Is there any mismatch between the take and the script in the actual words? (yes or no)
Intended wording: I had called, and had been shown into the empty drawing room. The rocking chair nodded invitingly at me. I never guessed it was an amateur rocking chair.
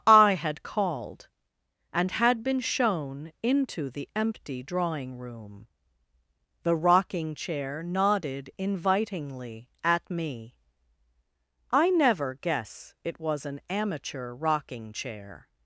yes